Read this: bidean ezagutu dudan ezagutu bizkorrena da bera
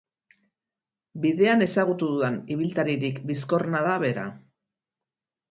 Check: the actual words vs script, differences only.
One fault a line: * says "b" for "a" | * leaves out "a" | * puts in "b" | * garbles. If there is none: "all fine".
* says "ibiltaririk" for "ezagutu"